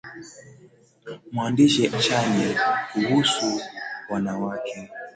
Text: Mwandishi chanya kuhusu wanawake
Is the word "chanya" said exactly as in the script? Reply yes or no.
yes